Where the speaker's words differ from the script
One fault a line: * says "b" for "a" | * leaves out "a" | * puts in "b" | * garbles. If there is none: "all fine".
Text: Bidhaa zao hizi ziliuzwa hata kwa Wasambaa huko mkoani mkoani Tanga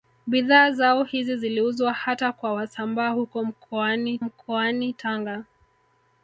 all fine